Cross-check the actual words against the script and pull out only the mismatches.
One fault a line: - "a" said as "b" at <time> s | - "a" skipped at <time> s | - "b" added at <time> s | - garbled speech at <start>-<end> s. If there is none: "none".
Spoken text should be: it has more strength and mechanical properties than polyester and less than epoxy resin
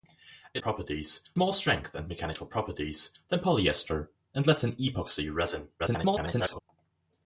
- "has" said as "properties" at 0.6 s
- garbled speech at 5.8-6.6 s